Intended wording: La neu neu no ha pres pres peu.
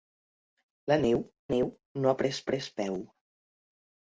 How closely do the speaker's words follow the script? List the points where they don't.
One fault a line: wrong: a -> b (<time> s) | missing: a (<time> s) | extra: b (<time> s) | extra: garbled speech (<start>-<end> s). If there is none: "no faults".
no faults